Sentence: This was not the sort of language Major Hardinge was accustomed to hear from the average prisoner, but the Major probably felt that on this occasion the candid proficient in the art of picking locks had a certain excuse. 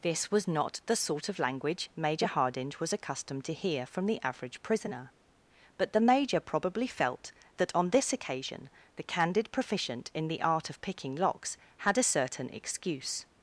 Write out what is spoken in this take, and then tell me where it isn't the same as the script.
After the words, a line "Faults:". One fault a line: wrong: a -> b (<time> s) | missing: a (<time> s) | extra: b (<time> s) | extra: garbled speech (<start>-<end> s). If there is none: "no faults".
This was not the sort of language Major Hardinge was accustomed to hear from the average prisoner, but the Major probably felt that on this occasion the candid proficient in the art of picking locks had a certain excuse.
Faults:
no faults